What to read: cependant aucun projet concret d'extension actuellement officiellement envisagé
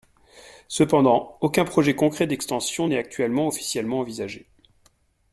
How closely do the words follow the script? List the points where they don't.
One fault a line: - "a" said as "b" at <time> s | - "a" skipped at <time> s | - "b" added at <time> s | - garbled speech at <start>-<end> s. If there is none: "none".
- "n'est" added at 2.8 s